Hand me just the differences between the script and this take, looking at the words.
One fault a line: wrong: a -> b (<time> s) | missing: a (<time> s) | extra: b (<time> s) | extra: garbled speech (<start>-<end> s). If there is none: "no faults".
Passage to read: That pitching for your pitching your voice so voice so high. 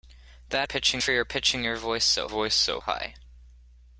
no faults